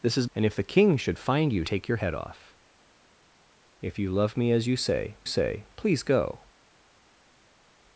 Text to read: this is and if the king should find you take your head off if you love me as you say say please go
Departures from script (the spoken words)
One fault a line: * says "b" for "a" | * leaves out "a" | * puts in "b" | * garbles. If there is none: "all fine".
all fine